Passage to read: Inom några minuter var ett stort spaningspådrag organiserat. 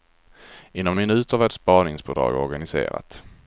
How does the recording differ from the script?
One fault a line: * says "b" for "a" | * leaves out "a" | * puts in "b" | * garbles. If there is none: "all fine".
* leaves out "några"
* leaves out "stort"